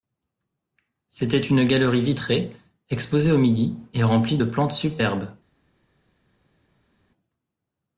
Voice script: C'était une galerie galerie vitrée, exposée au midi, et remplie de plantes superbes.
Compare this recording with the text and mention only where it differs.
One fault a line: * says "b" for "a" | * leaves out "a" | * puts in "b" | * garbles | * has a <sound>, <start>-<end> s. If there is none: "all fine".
* leaves out "galerie"